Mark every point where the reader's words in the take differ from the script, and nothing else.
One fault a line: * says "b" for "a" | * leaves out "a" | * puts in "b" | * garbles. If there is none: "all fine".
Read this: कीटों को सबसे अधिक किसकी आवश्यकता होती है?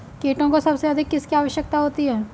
all fine